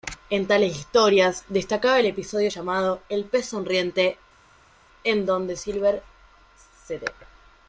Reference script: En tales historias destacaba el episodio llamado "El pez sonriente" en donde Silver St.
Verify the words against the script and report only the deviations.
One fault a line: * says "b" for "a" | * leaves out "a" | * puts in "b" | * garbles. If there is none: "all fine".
all fine